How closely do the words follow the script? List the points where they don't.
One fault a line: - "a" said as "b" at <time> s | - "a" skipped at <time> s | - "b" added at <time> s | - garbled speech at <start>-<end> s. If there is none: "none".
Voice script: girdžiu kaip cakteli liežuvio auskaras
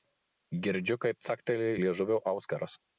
none